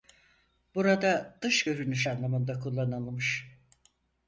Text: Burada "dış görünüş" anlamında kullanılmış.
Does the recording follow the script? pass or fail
pass